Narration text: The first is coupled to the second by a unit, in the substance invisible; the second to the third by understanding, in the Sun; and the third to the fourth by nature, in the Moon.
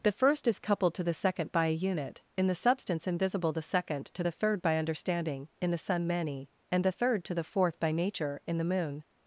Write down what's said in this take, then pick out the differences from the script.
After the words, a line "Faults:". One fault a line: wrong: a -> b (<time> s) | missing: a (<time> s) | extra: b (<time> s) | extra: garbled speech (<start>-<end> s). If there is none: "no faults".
The first is coupled to the second by a unit, in the substance invisible; the second to the third by understanding, in the Sun; many and the third to the fourth by nature, in the Moon.
Faults:
extra: many (6.1 s)